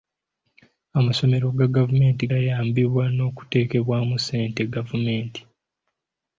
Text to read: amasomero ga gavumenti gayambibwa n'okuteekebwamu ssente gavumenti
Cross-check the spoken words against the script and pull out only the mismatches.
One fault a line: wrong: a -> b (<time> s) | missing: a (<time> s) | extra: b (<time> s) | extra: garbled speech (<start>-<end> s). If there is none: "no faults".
no faults